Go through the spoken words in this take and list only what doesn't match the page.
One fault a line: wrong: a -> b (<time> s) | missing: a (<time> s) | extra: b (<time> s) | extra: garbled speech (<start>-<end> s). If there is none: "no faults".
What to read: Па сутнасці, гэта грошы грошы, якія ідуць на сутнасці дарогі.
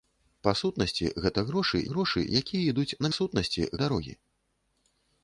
no faults